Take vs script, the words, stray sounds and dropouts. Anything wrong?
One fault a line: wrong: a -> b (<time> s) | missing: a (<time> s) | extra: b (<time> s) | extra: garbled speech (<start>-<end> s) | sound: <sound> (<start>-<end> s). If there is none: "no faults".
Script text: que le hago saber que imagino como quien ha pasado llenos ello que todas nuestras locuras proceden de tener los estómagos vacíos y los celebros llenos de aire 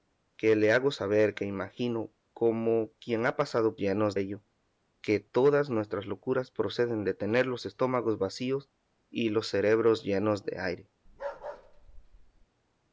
sound: bark (11.1-12.5 s)